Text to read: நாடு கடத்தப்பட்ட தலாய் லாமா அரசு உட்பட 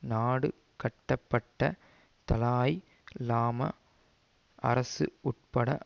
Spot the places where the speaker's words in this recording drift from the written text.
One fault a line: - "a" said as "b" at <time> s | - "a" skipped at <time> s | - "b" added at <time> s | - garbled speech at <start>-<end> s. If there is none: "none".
none